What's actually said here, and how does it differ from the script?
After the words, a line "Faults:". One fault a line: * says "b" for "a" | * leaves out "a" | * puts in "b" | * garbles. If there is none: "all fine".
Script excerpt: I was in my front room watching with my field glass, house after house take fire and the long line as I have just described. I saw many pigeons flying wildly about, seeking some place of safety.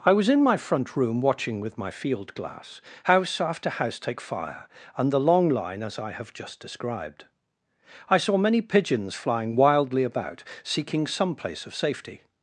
I was in my front room watching with my field glass, house after house take fire and the long line as I have just described. I saw many pigeons flying wildly about, seeking some place of safety.
Faults:
all fine